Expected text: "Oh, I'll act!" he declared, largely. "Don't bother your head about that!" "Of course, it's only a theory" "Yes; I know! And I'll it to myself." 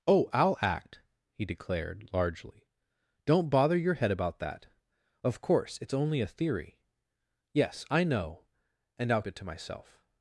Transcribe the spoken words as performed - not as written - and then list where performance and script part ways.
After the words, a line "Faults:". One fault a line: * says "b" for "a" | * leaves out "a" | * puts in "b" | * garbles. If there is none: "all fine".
"Oh, I'll act!" he declared, largely. "Don't bother your head about that!" "Of course, it's only a theory" "Yes; I know! And I'll it to myself."
Faults:
all fine